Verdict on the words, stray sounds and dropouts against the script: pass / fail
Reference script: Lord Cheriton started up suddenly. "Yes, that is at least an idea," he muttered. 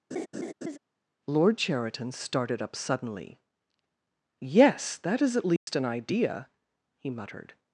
fail